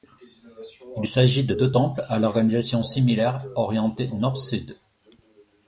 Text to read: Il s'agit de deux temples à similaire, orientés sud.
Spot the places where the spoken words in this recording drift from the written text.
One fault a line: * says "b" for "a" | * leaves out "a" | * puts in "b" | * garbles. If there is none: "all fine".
* puts in "l'organisation"
* puts in "nord"